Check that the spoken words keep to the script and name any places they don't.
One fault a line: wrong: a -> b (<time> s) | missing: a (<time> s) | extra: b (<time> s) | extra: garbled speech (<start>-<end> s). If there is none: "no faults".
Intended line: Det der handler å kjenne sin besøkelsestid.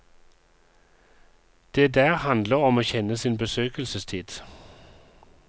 extra: om (2.5 s)